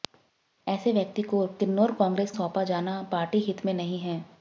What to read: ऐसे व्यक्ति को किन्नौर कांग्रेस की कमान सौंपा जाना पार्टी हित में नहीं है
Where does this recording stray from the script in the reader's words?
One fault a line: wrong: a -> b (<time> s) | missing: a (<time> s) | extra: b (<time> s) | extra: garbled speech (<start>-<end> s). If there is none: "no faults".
missing: की कमान (2.3 s)